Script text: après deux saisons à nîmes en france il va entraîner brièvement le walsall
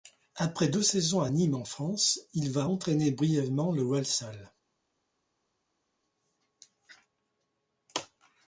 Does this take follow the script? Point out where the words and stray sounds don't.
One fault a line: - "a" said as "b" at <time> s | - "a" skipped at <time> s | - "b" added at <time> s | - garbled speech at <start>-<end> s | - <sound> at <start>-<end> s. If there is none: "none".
none